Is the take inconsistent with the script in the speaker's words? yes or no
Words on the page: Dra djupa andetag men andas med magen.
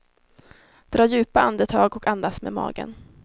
yes